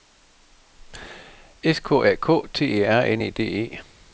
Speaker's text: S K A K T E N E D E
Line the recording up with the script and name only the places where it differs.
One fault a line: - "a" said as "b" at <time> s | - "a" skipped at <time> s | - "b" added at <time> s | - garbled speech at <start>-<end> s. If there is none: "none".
- "R" added at 2.9 s